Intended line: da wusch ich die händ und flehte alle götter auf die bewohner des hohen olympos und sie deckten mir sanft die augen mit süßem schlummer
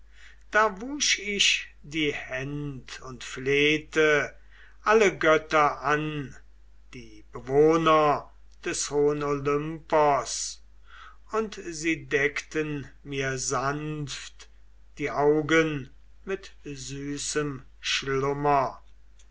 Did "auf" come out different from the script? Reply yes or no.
yes